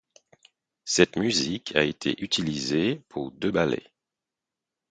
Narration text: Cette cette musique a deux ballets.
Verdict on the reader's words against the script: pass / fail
fail